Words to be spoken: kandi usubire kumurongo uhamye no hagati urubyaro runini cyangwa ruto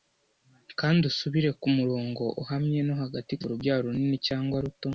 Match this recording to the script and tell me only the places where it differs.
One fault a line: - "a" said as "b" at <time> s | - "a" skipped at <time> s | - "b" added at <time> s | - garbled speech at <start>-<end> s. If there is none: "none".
none